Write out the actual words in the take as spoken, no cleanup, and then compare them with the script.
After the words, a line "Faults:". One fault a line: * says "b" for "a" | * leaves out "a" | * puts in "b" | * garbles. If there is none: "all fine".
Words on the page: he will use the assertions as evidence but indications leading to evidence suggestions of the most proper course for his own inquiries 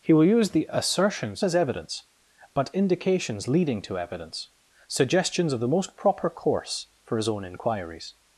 he will use the assertions as evidence but indications leading to evidence suggestions of the most proper course for his own inquiries
Faults:
all fine